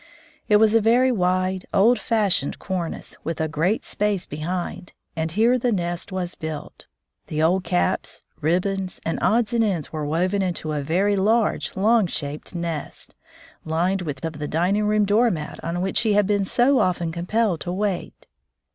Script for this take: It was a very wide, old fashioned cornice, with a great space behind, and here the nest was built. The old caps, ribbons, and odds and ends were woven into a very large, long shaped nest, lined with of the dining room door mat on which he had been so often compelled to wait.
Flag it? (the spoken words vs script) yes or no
no